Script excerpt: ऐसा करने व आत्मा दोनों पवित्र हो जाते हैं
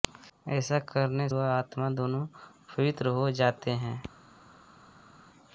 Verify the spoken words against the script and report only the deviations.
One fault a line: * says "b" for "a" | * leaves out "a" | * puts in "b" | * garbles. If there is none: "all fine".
all fine